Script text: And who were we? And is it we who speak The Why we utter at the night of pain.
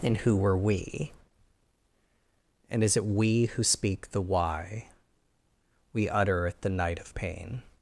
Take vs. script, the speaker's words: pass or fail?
pass